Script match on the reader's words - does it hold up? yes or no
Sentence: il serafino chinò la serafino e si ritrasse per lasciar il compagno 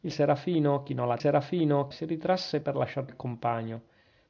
yes